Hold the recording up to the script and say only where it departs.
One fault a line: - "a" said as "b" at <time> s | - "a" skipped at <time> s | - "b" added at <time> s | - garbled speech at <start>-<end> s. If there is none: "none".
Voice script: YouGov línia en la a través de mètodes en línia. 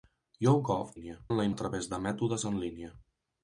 none